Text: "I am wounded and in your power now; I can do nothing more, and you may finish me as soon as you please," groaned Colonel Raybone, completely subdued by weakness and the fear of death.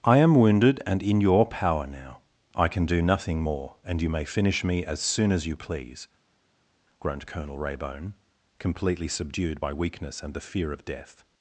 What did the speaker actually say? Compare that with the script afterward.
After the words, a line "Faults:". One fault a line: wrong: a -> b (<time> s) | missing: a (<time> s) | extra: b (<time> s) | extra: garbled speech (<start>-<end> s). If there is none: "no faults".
"I am wounded and in your power now; I can do nothing more, and you may finish me as soon as you please," groaned Colonel Raybone, completely subdued by weakness and the fear of death.
Faults:
no faults